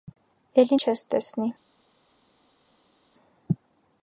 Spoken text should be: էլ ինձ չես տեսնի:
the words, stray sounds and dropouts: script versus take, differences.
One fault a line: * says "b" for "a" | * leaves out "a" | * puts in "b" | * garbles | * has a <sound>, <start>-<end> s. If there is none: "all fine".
* leaves out "ինձ"